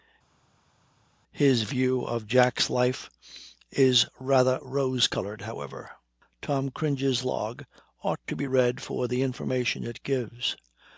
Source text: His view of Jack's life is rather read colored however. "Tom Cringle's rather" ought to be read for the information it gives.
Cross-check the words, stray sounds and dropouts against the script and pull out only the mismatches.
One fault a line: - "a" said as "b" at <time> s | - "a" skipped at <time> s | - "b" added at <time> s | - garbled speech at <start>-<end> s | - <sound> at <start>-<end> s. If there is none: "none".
- "read" said as "rose" at 4.6 s
- "rather" said as "log" at 7.2 s